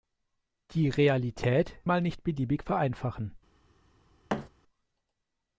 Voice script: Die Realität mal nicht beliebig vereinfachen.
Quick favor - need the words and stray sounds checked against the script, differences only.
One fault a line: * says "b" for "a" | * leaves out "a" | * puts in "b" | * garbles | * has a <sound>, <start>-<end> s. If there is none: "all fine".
* has a thud, 4.3-4.5 s